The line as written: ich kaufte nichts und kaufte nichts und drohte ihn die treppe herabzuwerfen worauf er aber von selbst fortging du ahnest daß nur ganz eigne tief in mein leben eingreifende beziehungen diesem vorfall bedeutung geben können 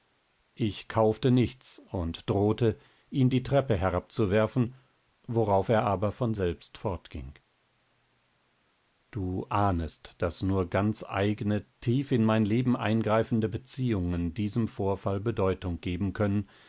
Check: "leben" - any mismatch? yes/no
no